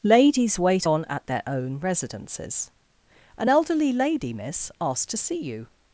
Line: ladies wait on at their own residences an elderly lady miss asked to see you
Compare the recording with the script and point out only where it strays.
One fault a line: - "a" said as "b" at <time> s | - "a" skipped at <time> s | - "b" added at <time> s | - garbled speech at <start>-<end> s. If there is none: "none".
none